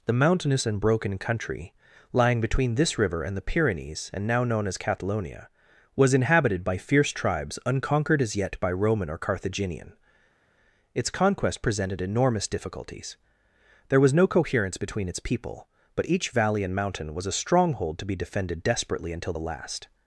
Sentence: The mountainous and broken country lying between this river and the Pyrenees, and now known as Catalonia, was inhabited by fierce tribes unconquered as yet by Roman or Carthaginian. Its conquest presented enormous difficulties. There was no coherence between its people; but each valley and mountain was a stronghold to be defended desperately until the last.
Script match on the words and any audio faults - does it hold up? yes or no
yes